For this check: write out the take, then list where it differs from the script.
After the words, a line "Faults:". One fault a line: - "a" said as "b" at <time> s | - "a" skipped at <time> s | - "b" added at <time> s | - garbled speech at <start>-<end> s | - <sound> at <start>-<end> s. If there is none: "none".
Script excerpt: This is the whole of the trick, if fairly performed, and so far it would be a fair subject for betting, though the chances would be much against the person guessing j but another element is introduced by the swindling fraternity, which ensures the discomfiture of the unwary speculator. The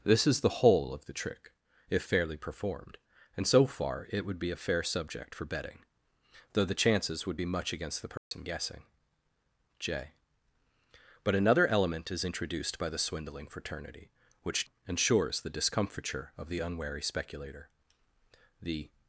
This is the whole of the trick, if fairly performed, and so far it would be a fair subject for betting, though the chances would be much against the person guessing j but another element is introduced by the swindling fraternity, which ensures the discomfiture of the unwary speculator. The
Faults:
- dropout at 8.2-8.3 s